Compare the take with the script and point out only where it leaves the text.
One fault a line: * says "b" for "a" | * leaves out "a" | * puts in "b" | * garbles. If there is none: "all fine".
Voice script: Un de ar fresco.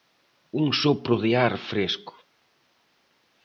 * puts in "sopro"